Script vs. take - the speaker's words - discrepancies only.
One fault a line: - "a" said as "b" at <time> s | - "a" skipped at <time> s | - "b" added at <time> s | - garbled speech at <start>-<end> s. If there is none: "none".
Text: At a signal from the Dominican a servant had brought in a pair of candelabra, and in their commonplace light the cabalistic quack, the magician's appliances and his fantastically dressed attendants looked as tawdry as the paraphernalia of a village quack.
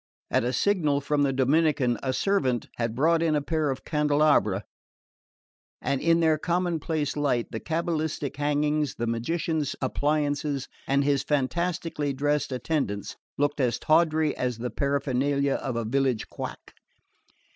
- "quack" said as "hangings" at 8.4 s